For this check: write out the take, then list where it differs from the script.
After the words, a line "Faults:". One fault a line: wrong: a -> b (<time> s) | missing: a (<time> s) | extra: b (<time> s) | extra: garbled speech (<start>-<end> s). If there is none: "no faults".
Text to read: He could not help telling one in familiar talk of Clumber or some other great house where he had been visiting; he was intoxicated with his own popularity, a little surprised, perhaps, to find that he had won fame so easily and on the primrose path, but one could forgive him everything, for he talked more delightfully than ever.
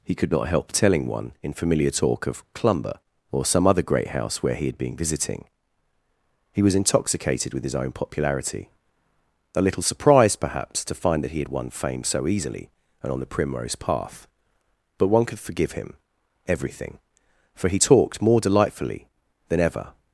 He could not help telling one in familiar talk of Clumber or some other great house where he had been visiting; he was intoxicated with his own popularity, a little surprised, perhaps, to find that he had won fame so easily and on the primrose path, but one could forgive him everything, for he talked more delightfully than ever.
Faults:
no faults